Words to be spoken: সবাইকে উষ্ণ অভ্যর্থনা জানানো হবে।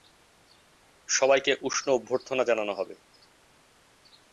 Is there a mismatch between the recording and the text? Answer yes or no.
no